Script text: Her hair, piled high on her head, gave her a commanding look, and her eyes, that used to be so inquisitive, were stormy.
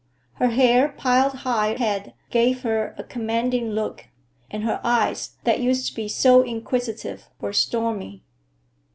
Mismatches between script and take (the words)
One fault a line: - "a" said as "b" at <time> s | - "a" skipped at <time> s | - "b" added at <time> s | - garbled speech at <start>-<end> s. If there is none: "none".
- "on her" skipped at 1.8 s